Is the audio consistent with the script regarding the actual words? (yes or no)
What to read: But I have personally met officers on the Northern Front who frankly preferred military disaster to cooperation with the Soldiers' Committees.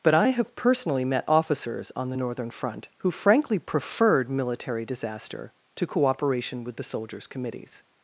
yes